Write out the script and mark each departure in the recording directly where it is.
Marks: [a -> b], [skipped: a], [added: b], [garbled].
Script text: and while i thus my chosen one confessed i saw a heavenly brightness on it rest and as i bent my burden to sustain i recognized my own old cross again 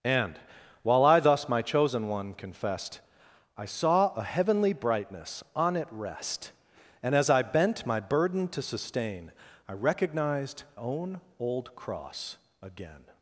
and while i thus my chosen one confessed i saw a heavenly brightness on it rest and as i bent my burden to sustain i recognized [skipped: my] own old cross again